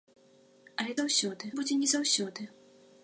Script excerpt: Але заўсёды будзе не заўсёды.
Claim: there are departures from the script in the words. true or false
false